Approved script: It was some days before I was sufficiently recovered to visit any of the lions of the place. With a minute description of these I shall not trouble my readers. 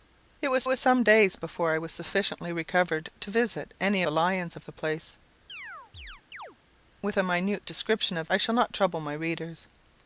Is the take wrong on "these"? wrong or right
wrong